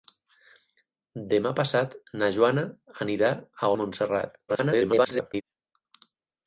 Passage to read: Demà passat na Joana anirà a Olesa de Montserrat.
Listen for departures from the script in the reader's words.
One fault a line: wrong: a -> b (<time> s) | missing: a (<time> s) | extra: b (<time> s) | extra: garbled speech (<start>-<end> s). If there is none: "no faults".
missing: Olesa (3.7 s)
extra: garbled speech (4.5-5.4 s)